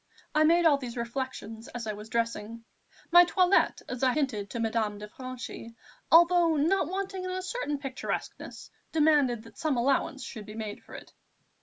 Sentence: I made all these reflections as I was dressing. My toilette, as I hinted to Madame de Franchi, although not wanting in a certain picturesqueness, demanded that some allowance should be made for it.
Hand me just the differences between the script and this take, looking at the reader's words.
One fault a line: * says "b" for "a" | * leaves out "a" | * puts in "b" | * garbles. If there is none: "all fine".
all fine